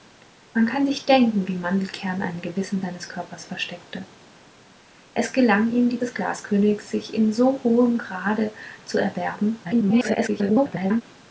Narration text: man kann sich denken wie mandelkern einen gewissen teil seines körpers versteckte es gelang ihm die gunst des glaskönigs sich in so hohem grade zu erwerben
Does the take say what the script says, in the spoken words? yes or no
no